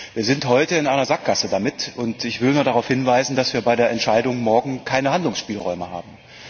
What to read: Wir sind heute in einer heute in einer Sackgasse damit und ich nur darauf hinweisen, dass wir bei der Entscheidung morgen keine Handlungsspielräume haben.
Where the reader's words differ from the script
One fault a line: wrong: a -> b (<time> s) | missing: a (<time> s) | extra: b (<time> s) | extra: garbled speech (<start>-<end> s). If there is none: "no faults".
missing: heute in einer (1.1 s)
extra: will (2.4 s)